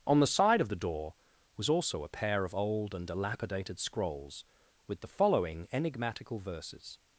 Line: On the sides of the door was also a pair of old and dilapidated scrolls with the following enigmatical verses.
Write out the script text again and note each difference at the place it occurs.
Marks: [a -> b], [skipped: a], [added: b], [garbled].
On the [sides -> side] of the door was also a pair of old and dilapidated scrolls with the following enigmatical verses.